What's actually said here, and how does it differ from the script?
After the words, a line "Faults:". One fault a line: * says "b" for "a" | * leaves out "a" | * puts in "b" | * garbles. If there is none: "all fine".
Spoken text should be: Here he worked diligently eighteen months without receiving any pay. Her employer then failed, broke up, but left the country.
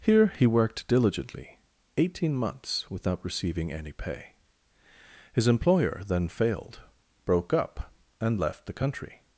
Here he worked diligently eighteen months without receiving any pay. His employer then failed, broke up, and left the country.
Faults:
* says "His" for "Her"
* says "and" for "but"